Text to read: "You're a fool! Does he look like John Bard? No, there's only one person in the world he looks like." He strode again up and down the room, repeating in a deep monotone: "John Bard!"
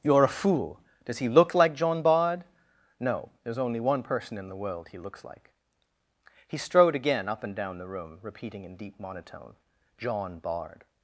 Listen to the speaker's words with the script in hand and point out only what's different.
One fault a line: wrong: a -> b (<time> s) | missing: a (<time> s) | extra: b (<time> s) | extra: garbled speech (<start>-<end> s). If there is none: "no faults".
missing: a (8.8 s)